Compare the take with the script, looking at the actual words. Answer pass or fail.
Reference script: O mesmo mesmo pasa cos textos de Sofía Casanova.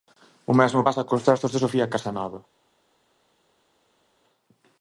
fail